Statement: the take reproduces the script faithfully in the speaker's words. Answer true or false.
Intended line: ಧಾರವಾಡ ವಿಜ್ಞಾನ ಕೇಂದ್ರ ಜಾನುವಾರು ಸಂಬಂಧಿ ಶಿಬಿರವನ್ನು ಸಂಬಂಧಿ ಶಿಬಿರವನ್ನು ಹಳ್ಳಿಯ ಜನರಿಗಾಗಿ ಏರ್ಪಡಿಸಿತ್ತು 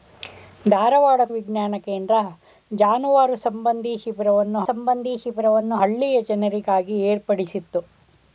true